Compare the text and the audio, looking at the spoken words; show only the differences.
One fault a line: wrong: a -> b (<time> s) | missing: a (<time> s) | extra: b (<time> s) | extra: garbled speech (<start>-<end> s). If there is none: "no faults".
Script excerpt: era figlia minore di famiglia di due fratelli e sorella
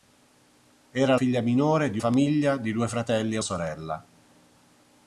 no faults